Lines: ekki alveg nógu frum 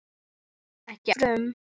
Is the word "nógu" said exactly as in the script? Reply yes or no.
no